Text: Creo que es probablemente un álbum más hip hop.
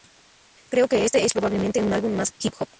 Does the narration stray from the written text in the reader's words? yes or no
yes